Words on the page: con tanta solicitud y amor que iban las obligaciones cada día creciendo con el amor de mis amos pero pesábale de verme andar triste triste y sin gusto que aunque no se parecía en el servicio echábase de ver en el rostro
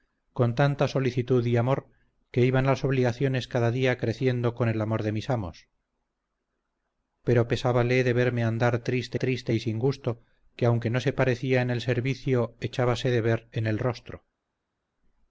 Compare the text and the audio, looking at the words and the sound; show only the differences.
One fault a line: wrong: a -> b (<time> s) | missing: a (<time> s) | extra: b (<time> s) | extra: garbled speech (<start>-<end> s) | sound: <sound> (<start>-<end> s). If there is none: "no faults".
no faults